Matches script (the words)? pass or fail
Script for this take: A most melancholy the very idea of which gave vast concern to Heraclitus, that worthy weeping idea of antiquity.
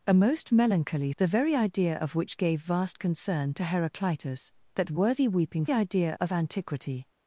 pass